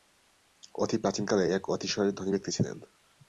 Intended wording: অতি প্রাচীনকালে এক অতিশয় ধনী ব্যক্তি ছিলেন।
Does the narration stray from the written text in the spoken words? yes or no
no